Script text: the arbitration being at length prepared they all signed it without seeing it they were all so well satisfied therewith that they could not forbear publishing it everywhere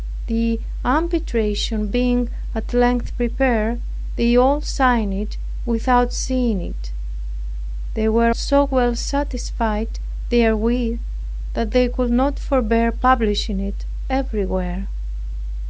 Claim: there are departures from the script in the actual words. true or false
true